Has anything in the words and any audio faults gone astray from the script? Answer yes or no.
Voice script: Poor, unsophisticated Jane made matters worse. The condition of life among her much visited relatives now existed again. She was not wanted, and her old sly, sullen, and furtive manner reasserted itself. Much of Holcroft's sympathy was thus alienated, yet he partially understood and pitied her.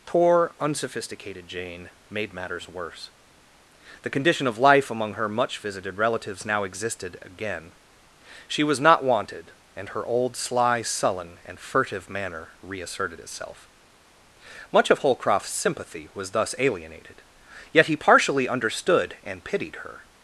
no